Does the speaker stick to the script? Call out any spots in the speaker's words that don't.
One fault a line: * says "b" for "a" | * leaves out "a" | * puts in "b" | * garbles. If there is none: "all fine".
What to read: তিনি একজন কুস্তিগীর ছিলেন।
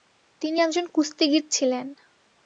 all fine